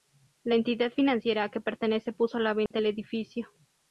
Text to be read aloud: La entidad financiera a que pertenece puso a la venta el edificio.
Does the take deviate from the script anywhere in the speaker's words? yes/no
no